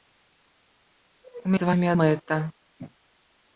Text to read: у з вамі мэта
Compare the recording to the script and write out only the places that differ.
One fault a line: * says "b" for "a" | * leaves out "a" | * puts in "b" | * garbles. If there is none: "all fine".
all fine